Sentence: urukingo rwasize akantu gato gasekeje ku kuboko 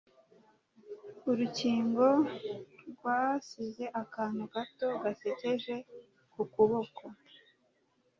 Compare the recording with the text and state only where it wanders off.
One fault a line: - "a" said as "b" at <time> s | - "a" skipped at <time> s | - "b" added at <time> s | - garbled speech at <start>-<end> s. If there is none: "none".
none